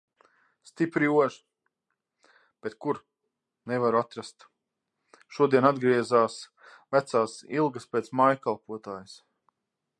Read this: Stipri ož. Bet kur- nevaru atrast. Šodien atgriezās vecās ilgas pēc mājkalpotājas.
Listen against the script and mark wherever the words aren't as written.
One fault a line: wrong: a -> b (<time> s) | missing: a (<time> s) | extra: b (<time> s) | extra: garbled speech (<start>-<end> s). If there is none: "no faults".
no faults